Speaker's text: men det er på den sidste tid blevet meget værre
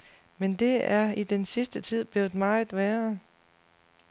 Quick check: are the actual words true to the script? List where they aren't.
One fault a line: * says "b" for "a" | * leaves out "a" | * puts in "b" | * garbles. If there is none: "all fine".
* says "i" for "på"